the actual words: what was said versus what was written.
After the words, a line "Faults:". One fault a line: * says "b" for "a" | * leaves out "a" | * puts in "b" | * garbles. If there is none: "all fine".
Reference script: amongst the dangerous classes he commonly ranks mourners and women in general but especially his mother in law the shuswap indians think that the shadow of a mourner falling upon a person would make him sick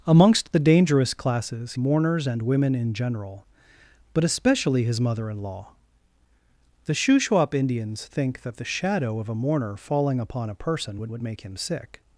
amongst the dangerous classes mourners and women in general but especially his mother in law the shuswap indians think that the shadow of a mourner falling upon a person would would make him sick
Faults:
* leaves out "he commonly ranks"
* puts in "would"